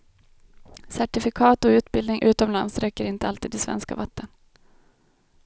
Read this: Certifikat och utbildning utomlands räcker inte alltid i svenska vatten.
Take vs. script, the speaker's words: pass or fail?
pass